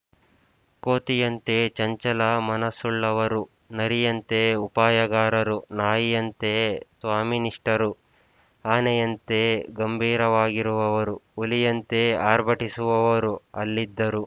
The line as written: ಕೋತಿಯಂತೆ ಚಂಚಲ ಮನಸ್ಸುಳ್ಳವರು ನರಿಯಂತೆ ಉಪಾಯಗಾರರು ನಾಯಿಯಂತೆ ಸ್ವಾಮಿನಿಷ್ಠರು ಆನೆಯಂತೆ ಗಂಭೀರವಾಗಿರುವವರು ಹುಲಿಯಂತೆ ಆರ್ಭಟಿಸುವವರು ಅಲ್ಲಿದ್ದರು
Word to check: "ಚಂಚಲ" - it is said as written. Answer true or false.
true